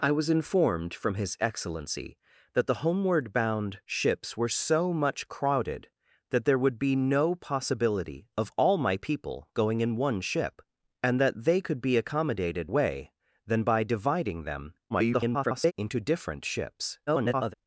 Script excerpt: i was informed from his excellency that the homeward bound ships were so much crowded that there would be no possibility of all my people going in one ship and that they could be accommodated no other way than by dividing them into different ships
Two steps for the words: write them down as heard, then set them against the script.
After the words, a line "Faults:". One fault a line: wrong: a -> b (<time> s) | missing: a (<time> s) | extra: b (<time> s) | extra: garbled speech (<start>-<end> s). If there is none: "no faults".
i was informed from his excellency that the homeward bound ships were so much crowded that there would be no possibility of all my people going in one ship and that they could be accommodated way than by dividing them [garbled] into different ships [garbled]
Faults:
missing: no other (12.7 s)
extra: garbled speech (14.9-15.7 s)
extra: garbled speech (17.1-17.5 s)